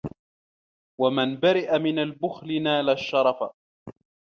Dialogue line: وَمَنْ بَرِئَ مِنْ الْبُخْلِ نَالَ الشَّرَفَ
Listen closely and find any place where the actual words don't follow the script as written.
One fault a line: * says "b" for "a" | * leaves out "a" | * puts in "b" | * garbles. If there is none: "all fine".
all fine